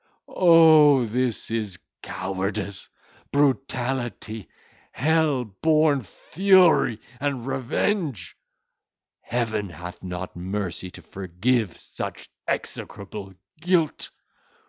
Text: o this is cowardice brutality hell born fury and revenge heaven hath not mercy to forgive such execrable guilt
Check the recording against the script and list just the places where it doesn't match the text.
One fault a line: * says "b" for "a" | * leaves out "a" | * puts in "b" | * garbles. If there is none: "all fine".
all fine